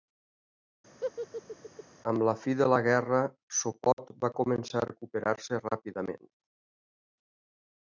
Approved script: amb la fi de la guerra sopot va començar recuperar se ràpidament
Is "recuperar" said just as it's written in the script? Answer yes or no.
yes